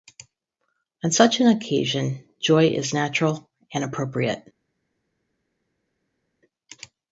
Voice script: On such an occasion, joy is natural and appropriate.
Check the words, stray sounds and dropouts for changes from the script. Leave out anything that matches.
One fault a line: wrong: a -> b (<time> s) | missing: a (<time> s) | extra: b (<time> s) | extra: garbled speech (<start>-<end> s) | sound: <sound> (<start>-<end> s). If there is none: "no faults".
no faults